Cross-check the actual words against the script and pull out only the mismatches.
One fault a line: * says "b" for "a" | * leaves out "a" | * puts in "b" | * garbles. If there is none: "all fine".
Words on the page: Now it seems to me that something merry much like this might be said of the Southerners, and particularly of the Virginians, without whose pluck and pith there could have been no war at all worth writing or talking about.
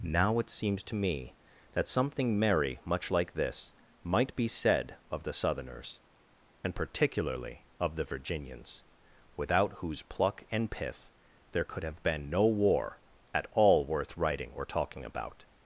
all fine